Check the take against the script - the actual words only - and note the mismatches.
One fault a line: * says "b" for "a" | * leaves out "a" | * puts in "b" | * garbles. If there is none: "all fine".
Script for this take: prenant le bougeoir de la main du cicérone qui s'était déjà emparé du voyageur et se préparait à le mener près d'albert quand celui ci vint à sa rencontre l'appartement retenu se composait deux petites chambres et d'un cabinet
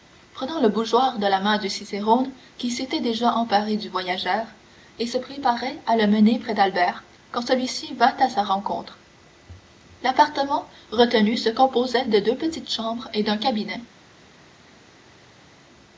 * puts in "de"